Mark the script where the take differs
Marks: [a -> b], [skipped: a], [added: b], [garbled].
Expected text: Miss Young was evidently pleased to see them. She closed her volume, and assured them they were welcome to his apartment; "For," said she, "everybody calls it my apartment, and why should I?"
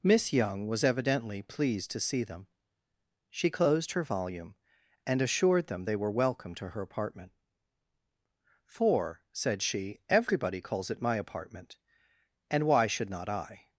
Miss Young was evidently pleased to see them. She closed her volume, and assured them they were welcome to [his -> her] apartment; "For," said she, "everybody calls it my apartment, and why should [added: not] I?"